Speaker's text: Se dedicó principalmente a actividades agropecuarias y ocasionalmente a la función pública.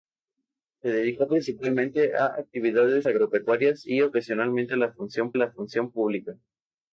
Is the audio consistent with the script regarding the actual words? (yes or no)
no